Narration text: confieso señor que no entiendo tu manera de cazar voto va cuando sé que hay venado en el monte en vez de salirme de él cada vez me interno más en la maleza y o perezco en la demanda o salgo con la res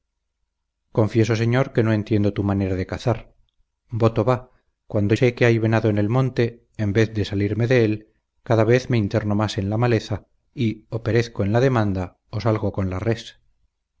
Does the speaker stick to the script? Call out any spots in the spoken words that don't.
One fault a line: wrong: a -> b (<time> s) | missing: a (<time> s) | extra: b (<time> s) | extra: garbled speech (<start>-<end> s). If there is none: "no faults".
no faults